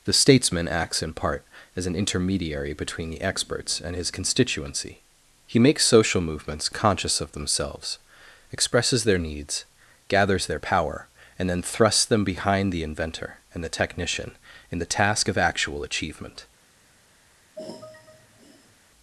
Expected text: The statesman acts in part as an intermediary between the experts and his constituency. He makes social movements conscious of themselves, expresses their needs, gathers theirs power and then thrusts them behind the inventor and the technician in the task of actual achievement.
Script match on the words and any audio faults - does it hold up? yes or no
no